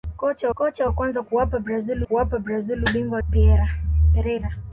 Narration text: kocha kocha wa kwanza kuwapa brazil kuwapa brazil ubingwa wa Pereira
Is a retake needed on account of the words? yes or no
no